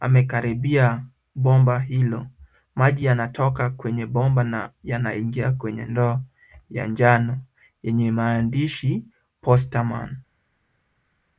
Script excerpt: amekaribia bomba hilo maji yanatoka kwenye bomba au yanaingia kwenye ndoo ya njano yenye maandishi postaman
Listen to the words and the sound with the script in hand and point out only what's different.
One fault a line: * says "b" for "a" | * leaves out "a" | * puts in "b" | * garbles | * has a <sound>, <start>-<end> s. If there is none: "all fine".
* says "na" for "au"